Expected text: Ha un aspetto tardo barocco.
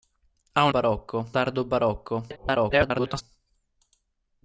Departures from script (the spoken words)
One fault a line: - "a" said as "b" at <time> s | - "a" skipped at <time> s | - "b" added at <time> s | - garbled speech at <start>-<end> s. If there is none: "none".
- "aspetto" said as "barocco" at 0.7 s
- garbled speech at 2.3-3.2 s